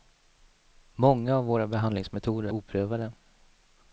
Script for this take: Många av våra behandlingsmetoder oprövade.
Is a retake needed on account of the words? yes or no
no